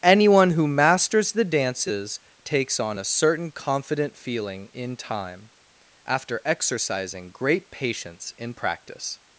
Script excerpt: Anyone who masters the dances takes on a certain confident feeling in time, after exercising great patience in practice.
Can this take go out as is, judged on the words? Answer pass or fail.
pass